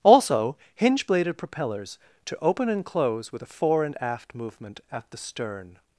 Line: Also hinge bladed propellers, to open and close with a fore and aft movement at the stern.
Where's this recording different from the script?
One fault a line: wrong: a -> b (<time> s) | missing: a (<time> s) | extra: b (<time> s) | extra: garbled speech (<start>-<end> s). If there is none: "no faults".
no faults